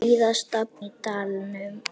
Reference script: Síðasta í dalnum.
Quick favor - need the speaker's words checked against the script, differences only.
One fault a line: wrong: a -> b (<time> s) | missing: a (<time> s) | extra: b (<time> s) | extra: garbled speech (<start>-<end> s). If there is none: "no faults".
no faults